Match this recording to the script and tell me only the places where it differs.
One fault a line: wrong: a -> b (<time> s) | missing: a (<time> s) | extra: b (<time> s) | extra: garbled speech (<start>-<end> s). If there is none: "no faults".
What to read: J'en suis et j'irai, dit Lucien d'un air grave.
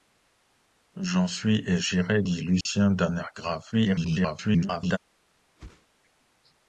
extra: garbled speech (3.7-5.0 s)